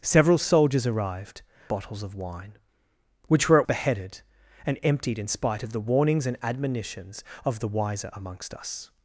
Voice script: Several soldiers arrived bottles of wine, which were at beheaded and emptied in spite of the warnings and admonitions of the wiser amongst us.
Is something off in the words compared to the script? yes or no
no